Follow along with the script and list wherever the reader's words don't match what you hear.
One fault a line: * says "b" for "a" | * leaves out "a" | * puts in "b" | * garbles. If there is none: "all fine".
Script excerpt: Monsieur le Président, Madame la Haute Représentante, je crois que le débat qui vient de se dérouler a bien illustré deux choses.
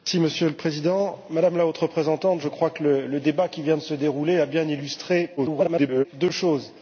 * garbles